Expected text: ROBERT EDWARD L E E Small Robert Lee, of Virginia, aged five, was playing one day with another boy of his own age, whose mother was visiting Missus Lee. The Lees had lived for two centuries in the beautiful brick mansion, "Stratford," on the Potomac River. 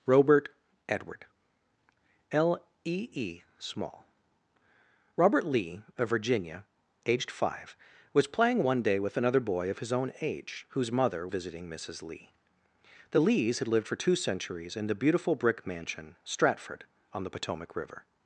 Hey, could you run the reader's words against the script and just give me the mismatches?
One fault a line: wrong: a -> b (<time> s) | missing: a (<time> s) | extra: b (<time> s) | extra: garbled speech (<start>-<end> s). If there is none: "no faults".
missing: was (11.3 s)